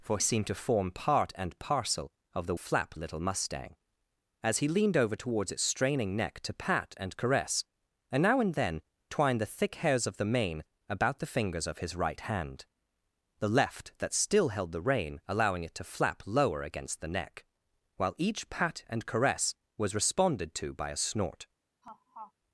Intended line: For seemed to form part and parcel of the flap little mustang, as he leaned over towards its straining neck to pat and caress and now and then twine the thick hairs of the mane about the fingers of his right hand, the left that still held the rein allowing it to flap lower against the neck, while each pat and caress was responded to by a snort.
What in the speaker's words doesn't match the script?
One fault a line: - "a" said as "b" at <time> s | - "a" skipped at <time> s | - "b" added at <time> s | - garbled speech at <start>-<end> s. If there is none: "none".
none